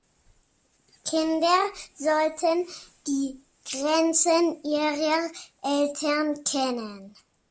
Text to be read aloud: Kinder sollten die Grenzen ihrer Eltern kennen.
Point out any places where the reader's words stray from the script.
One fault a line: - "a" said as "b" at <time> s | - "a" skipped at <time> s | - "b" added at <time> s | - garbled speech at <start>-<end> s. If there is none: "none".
none